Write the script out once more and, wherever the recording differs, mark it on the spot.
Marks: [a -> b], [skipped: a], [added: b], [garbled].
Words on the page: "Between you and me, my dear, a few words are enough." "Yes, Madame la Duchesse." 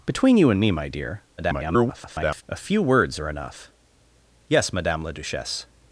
"Between you and me, my dear, [garbled] a few words are enough." "Yes, Madame la Duchesse."